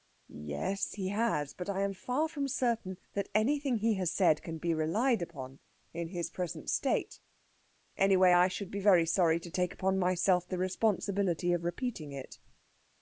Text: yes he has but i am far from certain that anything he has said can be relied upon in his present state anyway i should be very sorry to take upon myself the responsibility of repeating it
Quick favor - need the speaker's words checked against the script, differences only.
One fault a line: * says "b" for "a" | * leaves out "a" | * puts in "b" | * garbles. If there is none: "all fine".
all fine